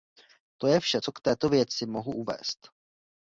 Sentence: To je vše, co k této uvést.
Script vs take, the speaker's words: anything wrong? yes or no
yes